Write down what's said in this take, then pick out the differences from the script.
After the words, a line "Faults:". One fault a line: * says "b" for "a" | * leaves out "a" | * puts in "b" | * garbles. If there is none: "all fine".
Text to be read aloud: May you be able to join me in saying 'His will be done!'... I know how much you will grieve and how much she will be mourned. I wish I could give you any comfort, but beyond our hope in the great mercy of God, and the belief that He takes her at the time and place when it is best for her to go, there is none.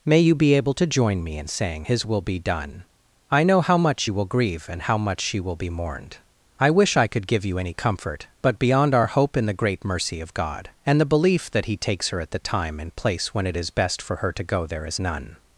May you be able to join me in saying 'His will be done!'... I know how much you will grieve and how much she will be mourned. I wish I could give you any comfort, but beyond our hope in the great mercy of God, and the belief that He takes her at the time and place when it is best for her to go, there is none.
Faults:
all fine